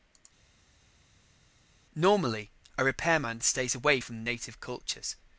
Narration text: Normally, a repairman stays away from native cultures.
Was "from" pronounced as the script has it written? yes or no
yes